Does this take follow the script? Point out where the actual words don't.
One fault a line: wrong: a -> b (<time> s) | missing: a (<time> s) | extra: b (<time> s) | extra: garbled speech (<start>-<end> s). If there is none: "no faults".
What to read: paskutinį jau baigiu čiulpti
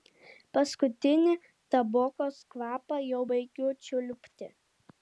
extra: tabokos kvapą (1.8 s)